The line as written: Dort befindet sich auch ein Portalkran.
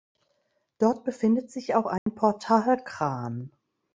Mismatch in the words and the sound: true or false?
true